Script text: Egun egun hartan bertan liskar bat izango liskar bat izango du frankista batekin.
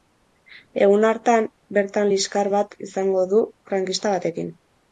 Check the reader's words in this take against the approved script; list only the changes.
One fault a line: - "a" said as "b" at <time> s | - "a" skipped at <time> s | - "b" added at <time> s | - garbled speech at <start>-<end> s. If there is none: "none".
- "egun" skipped at 1.1 s
- "liskar bat izango" skipped at 3.3 s